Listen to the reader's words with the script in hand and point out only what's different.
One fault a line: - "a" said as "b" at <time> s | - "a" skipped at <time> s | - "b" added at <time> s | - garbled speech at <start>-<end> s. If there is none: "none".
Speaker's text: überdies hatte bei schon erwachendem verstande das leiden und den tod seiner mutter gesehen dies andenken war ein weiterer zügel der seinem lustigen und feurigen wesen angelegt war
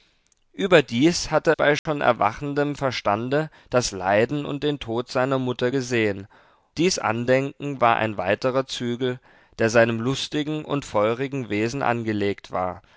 none